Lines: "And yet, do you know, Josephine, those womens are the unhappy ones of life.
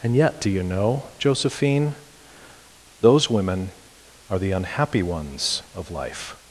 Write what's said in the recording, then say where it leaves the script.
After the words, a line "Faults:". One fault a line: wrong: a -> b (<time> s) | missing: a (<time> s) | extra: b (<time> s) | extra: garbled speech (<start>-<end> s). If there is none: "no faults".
"And yet, do you know, Josephine, those women are the unhappy ones of life.
Faults:
wrong: womens -> women (3.3 s)